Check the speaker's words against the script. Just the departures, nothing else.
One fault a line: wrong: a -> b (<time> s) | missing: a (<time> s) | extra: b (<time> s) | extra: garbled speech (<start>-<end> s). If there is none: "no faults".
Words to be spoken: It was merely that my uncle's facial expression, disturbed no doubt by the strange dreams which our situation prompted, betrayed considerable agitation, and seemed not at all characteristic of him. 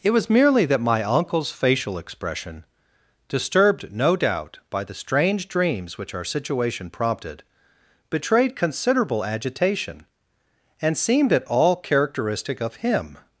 missing: not (11.3 s)